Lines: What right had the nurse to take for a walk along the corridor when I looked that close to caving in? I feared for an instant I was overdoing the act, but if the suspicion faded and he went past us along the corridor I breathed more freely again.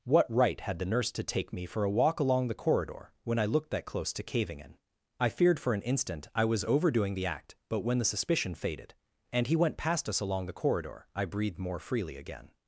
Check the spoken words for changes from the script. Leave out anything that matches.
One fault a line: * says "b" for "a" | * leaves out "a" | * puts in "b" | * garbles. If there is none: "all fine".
* puts in "me"
* says "when" for "if"